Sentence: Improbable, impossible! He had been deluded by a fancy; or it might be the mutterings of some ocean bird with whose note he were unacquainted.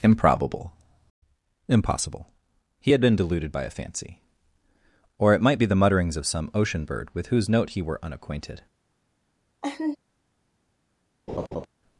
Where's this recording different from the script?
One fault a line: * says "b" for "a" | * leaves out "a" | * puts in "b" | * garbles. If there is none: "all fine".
all fine